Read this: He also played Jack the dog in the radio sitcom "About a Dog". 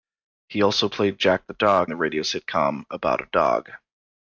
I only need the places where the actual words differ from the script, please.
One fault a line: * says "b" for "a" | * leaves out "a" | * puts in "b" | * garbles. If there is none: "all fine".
* leaves out "in"